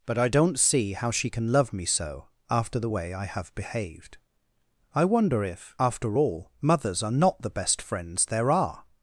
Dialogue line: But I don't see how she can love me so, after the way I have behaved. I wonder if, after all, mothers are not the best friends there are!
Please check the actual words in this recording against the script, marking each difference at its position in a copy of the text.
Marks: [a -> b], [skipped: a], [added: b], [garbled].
But I don't see how she can love me so, after the way I have behaved. I wonder if, after all, mothers are not the best friends there are!